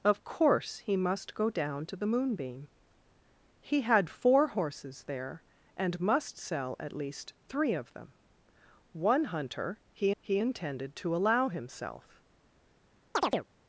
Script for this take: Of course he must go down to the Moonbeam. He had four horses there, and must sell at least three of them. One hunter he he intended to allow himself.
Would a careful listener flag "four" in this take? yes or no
no